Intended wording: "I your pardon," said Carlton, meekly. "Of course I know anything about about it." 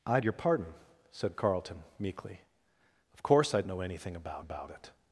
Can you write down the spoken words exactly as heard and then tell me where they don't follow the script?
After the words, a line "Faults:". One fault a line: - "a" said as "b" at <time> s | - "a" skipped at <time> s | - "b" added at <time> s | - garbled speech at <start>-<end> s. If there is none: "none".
"I your pardon," said Carlton, meekly. "Of course I know anything about about it."
Faults:
none